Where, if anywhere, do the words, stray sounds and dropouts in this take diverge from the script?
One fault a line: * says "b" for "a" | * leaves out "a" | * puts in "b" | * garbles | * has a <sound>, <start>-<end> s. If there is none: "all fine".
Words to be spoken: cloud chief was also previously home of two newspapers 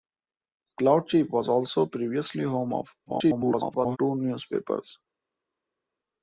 * garbles